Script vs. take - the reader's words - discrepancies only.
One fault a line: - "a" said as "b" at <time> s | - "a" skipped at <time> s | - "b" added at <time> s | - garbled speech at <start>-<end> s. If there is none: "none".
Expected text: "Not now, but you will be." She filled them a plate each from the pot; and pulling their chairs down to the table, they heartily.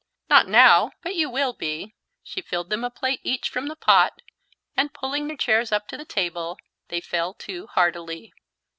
- "down" said as "up" at 5.7 s
- "fell to" added at 7.0 s